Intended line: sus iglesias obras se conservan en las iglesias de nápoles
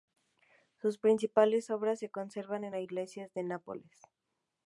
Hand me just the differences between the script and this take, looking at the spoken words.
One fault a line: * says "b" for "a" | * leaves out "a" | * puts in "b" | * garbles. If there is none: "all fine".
* says "principales" for "iglesias"